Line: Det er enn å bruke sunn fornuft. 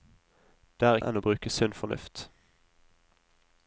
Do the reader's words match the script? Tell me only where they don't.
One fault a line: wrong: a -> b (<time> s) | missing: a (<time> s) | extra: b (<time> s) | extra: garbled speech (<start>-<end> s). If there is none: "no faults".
no faults